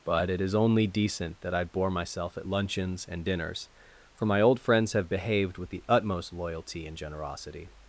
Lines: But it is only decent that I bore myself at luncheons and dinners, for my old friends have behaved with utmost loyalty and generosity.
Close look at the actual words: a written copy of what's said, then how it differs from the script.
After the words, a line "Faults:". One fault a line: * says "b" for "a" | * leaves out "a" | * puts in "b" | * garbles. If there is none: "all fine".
But it is only decent that I bore myself at luncheons and dinners, for my old friends have behaved with the utmost loyalty and generosity.
Faults:
* puts in "the"